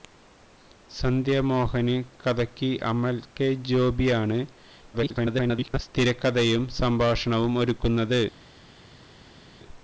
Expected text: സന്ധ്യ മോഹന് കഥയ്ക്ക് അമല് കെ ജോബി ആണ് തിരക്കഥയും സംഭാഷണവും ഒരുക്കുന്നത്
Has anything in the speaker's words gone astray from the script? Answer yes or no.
yes